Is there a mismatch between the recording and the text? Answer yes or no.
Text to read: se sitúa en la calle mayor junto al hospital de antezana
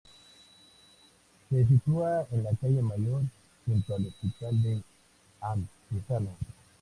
no